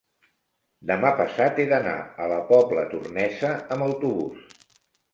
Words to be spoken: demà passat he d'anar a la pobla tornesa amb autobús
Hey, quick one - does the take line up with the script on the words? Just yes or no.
yes